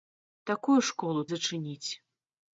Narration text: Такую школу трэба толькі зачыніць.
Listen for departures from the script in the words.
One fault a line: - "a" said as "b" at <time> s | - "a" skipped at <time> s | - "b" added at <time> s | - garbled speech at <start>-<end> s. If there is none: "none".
- "трэба толькі" skipped at 1.2 s